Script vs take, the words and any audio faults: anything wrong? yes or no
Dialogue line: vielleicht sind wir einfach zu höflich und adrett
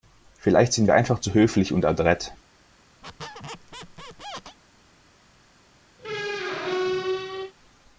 yes